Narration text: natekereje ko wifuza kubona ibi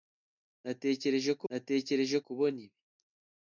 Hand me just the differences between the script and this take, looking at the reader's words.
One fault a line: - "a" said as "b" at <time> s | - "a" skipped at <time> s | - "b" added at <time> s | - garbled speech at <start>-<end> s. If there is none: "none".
- "wifuza" said as "natekereje" at 1.5 s